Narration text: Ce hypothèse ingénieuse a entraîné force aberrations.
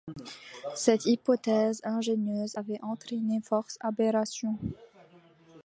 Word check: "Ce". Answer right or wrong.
wrong